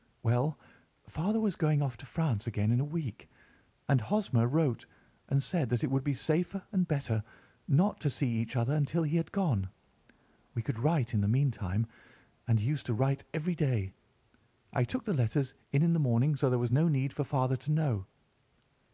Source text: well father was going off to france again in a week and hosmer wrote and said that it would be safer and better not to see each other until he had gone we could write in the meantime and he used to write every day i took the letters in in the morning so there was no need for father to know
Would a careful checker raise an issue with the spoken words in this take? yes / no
no